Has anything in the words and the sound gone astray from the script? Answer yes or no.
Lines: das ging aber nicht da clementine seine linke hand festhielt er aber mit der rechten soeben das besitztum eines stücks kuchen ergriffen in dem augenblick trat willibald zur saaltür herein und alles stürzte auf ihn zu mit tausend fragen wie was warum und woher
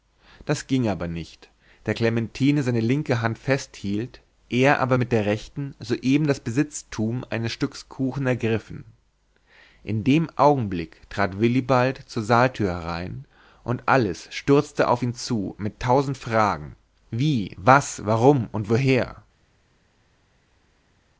no